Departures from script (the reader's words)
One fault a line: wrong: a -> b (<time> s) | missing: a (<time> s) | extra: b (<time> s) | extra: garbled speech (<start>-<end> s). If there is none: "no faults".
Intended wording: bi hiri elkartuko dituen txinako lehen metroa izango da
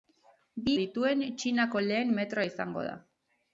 missing: hiri elkartuko (0.7 s)